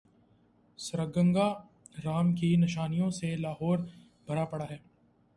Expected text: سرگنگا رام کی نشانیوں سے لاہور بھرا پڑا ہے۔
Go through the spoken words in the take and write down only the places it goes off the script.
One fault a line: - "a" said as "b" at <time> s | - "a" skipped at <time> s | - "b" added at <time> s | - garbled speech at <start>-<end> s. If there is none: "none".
none